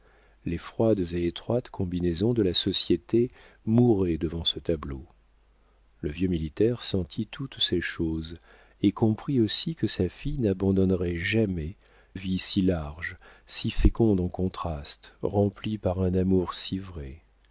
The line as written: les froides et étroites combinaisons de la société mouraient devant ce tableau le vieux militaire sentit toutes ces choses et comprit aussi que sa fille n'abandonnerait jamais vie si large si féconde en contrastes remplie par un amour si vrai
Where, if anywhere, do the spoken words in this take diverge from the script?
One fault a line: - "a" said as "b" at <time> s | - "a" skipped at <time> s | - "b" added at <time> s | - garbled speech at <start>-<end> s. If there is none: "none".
none